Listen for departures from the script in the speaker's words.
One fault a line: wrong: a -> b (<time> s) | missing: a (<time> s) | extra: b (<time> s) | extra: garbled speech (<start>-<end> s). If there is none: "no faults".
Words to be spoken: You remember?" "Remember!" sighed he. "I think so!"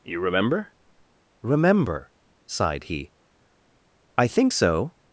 no faults